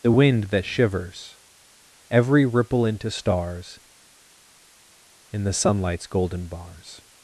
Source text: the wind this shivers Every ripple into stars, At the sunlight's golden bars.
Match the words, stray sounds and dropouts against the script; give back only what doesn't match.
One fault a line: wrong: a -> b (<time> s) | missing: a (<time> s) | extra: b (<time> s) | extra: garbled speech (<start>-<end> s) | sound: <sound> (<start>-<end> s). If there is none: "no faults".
wrong: this -> that (0.4 s)
wrong: At -> In (5.3 s)